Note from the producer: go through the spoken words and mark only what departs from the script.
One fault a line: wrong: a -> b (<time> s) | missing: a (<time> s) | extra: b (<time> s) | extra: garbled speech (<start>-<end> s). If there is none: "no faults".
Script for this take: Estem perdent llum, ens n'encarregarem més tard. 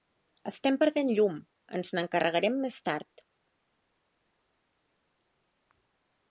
no faults